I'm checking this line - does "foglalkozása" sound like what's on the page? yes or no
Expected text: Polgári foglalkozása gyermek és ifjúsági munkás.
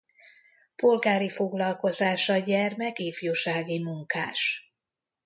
yes